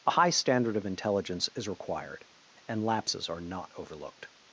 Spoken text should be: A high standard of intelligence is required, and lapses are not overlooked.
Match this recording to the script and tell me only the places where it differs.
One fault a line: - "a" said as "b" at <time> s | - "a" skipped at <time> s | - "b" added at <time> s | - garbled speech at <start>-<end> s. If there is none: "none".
none